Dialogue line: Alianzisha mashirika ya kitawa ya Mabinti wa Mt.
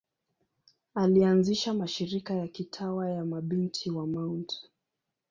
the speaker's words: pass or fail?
pass